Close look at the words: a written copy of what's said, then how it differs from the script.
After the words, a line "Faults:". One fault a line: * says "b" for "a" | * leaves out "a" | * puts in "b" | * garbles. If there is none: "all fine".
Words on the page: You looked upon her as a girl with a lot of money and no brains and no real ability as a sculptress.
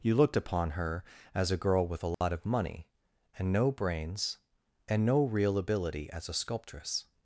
You looked upon her as a girl with a lot of money and no brains and no real ability as a sculptress.
Faults:
all fine